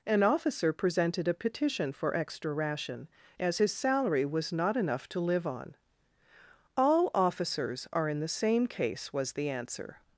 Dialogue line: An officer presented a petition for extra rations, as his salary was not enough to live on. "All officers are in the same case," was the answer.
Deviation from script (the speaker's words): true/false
true